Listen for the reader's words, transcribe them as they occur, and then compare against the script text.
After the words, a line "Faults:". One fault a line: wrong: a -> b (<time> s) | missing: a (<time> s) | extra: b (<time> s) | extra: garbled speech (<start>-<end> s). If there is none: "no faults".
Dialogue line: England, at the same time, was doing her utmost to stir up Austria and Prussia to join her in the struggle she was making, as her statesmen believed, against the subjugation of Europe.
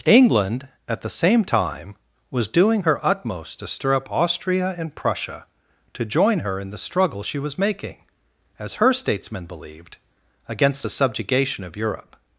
England, at the same time, was doing her utmost to stir up Austria and Prussia to join her in the struggle she was making, as her statesmen believed, against the subjugation of Europe.
Faults:
no faults